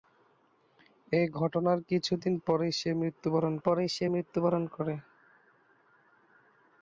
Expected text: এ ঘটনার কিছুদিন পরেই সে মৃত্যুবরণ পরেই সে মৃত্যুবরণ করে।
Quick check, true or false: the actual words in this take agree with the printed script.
true